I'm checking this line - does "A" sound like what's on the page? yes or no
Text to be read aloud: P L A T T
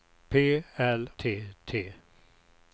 no